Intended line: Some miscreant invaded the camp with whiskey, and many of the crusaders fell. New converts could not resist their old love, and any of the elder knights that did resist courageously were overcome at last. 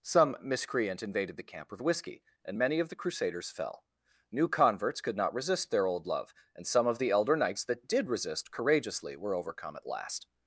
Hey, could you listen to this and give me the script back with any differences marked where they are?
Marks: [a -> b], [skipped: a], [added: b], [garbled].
Some miscreant invaded the camp with whiskey, and many of the crusaders fell. New converts could not resist their old love, and [any -> some] of the elder knights that did resist courageously were overcome at last.